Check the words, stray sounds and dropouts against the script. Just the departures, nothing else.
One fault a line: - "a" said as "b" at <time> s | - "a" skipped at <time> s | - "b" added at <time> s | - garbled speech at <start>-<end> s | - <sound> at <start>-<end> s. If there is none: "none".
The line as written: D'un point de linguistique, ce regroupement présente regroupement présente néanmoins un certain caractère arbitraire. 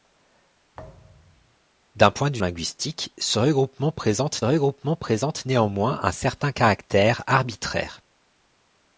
- thud at 0.7-1.6 s